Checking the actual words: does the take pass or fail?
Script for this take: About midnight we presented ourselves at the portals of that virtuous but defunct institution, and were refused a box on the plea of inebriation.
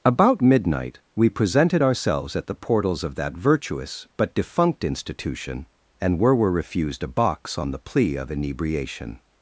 fail